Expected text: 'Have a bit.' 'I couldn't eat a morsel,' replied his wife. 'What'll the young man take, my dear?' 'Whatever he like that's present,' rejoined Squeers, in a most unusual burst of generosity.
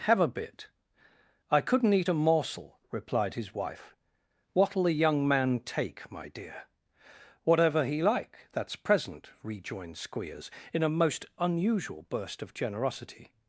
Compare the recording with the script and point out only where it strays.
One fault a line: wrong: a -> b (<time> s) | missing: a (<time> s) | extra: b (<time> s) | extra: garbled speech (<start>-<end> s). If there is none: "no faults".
no faults